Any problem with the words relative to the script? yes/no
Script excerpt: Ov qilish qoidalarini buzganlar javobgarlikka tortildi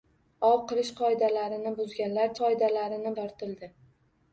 yes